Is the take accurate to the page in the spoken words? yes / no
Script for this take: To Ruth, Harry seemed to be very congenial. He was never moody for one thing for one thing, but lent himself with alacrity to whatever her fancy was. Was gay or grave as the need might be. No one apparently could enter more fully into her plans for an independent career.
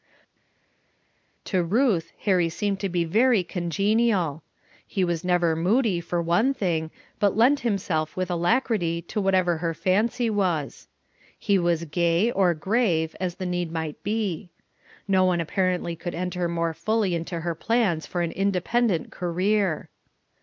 no